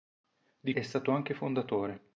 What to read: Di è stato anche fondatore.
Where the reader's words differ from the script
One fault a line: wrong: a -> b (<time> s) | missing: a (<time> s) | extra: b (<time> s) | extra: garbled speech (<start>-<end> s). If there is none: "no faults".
no faults